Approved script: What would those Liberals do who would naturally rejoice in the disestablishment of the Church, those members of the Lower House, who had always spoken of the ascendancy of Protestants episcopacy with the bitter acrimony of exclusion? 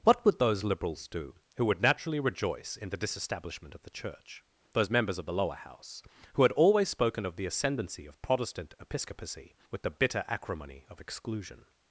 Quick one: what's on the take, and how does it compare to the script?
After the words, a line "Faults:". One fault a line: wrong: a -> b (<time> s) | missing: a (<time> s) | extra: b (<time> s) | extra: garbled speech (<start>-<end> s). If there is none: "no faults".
What would those Liberals do who would naturally rejoice in the disestablishment of the Church, those members of the Lower House, who had always spoken of the ascendancy of Protestant episcopacy with the bitter acrimony of exclusion?
Faults:
wrong: Protestants -> Protestant (8.2 s)